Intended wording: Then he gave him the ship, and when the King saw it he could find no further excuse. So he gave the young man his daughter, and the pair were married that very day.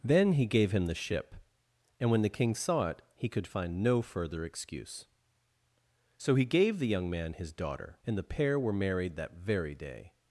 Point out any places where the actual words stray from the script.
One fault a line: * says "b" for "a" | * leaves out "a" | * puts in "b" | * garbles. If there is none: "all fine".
all fine